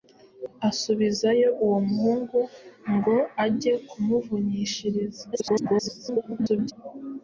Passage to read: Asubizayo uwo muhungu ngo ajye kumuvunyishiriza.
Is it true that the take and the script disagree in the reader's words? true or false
true